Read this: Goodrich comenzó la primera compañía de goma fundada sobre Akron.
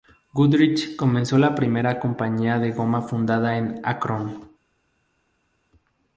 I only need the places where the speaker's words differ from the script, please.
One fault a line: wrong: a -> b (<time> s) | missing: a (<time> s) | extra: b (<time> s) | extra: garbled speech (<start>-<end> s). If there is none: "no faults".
wrong: sobre -> en (3.6 s)